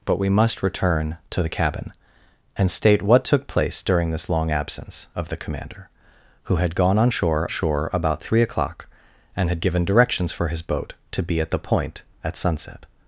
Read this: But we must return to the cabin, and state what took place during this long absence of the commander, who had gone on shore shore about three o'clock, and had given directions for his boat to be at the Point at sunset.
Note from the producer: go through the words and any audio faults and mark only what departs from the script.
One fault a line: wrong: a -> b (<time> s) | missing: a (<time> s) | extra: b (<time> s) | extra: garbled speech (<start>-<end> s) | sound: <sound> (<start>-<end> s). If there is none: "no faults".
no faults